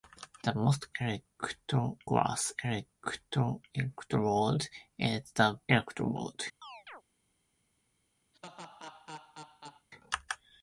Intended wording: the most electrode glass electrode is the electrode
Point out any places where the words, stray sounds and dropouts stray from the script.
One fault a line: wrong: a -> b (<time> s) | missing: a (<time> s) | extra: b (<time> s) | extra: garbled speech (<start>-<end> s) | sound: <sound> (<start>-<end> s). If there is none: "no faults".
sound: chirp (6.6-7.0 s)
sound: laugh (8.3-9.9 s)